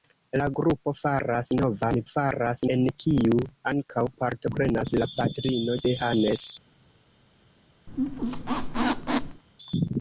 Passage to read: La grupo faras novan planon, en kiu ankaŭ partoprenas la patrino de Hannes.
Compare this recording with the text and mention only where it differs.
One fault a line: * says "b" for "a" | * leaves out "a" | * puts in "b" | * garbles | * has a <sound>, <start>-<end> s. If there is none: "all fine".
* says "faras" for "planon"
* has a squeak, 7.9-9.4 s